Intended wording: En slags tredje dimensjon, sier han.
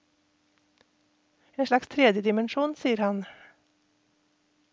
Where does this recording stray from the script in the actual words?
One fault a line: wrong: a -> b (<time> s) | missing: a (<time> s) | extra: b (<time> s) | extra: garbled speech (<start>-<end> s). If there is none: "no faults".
no faults